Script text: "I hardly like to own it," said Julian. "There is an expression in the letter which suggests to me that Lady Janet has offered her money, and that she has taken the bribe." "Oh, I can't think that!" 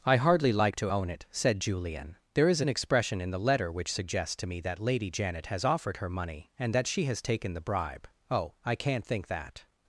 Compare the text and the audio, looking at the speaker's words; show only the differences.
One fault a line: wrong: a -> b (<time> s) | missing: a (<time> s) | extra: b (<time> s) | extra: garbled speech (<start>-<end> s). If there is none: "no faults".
no faults